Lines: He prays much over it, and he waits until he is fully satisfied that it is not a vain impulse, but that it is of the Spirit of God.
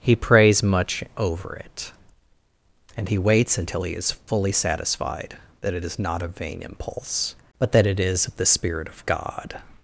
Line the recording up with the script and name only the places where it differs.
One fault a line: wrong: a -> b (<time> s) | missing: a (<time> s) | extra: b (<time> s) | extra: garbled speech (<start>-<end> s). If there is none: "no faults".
no faults